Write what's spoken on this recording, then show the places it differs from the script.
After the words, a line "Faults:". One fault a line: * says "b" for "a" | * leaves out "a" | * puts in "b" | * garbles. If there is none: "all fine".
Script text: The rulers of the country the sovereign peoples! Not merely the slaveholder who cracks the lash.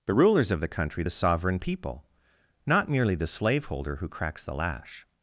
The rulers of the country the sovereign people! Not merely the slaveholder who cracks the lash.
Faults:
* says "people" for "peoples"